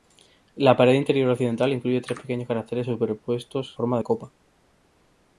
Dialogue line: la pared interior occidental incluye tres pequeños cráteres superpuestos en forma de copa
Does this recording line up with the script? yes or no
no